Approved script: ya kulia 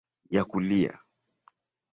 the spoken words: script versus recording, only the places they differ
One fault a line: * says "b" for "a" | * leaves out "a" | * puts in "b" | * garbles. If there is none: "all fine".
all fine